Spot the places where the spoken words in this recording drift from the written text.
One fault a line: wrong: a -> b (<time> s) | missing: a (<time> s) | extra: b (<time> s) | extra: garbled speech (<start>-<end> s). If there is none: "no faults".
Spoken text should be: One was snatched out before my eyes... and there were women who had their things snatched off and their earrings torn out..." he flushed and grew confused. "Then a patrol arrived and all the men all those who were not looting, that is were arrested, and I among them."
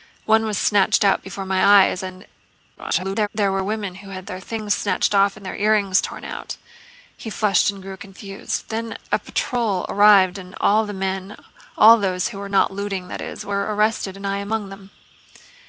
extra: garbled speech (2.8-3.3 s)